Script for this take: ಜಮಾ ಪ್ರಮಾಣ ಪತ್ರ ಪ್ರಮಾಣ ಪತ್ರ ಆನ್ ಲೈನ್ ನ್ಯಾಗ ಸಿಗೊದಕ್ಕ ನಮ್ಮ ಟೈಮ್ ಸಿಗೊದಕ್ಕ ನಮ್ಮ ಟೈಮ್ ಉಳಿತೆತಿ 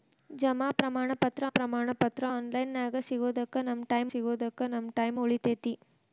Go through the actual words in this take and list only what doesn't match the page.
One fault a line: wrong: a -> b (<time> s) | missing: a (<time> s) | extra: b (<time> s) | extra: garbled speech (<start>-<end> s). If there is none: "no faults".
no faults